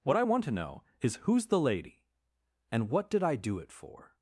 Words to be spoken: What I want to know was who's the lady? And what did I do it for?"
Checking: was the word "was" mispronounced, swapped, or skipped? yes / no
yes